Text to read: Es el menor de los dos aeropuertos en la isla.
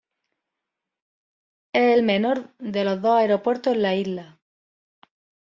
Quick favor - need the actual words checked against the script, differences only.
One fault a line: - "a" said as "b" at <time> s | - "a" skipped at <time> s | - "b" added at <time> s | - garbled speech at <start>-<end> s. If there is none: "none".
none